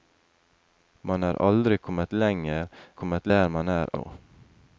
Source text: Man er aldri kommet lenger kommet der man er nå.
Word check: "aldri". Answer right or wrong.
right